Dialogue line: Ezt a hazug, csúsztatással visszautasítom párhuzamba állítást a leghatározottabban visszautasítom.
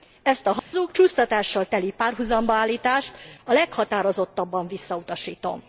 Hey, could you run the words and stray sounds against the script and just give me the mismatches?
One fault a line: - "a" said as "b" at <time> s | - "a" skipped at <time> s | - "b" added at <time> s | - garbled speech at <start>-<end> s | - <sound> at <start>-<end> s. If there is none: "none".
- dropout at 0.6-0.7 s
- "visszautasítom" said as "teli" at 1.6 s